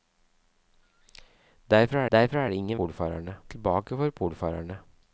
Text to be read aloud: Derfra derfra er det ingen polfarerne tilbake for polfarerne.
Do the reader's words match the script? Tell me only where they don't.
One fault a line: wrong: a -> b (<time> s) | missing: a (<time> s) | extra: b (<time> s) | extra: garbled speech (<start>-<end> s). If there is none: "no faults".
no faults